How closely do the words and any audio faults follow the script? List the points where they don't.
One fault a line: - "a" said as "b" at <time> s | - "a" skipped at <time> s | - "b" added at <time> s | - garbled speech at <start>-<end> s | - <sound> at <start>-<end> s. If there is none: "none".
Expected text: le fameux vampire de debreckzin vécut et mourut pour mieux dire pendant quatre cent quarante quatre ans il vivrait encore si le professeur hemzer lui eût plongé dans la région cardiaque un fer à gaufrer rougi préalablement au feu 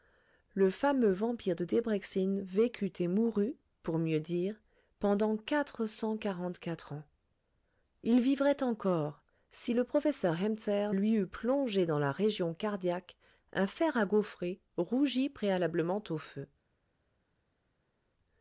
none